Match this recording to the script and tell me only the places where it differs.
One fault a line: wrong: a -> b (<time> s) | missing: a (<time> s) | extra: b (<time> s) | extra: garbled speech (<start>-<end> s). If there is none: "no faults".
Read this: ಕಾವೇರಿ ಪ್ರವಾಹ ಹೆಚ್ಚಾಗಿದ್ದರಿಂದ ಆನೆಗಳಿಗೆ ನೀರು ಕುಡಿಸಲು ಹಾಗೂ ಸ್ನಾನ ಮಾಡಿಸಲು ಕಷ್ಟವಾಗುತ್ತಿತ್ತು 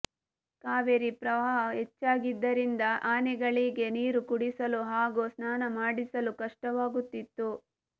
no faults